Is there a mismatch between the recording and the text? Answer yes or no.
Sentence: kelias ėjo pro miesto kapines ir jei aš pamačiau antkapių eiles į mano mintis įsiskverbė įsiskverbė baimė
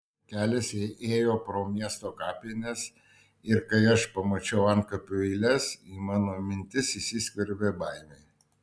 yes